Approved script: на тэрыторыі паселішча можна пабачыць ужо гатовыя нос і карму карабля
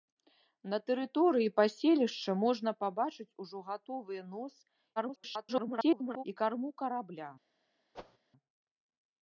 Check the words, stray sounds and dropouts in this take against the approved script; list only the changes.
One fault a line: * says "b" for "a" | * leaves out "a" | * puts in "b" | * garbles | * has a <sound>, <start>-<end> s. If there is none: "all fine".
* garbles
* has a whoosh, 7.9-8.2 s